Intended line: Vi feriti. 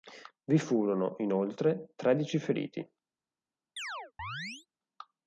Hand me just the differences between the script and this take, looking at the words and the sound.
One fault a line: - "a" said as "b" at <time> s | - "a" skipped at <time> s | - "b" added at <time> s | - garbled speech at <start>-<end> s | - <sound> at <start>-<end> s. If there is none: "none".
- "furono inoltre tredici" added at 0.6 s
- chirp at 3.8-4.7 s